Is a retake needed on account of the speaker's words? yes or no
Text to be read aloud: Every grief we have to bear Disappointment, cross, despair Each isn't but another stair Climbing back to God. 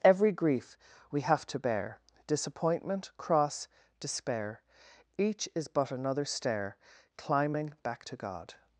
yes